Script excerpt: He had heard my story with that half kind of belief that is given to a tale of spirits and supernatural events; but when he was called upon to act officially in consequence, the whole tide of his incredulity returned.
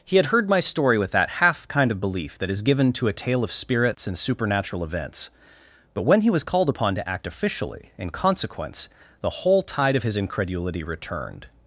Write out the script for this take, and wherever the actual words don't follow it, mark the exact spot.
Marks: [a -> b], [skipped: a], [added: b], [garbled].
He had heard my story with that half kind of belief that is given to a tale of spirits and supernatural events; but when he was called upon to act officially in consequence, the whole tide of his incredulity returned.